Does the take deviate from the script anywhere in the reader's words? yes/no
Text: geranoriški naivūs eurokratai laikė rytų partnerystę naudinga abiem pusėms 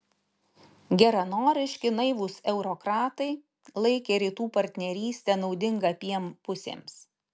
no